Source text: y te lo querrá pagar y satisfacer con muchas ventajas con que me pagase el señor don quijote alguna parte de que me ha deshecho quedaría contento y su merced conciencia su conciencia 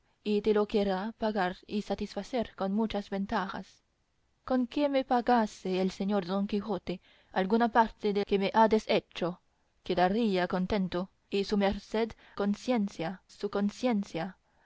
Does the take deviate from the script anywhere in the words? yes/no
no